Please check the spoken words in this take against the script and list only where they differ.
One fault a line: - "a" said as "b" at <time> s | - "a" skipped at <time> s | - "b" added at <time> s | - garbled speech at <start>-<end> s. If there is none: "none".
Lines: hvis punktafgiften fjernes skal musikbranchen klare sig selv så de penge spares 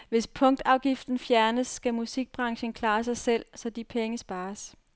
none